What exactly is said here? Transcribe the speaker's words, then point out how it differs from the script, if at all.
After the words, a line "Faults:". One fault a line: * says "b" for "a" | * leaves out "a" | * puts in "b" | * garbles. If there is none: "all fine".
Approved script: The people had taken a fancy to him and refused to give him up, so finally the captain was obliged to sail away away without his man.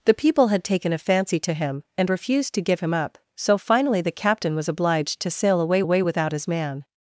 The people had taken a fancy to him and refused to give him up, so finally the captain was obliged to sail away away without his man.
Faults:
all fine